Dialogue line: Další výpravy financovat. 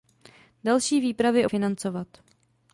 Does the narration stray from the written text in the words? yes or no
no